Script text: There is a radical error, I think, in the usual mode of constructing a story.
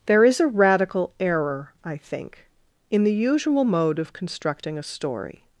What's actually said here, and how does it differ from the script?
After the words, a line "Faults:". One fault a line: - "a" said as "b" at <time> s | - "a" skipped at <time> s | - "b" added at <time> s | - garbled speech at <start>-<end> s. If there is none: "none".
There is a radical error, I think, in the usual mode of constructing a story.
Faults:
none